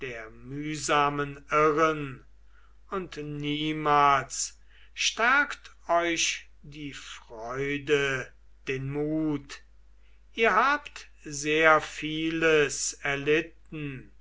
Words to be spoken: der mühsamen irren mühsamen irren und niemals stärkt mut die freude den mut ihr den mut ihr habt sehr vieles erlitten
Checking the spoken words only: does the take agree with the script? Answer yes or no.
no